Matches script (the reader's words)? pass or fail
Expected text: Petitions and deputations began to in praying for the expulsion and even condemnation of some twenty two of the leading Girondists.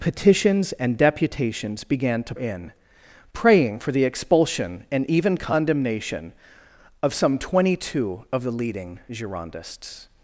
pass